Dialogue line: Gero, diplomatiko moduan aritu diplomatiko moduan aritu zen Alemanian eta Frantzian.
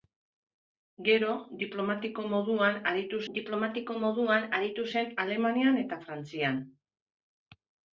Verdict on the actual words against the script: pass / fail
pass